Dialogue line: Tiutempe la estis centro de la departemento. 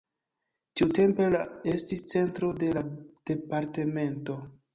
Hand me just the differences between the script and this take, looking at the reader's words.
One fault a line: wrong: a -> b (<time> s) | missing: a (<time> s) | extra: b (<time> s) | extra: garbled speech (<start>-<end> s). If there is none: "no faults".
no faults